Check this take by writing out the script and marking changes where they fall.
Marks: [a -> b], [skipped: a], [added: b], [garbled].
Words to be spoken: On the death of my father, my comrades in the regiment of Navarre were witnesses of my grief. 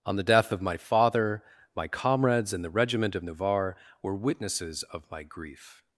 On the death of my father, my comrades in the regiment of Navarre were witnesses of my grief.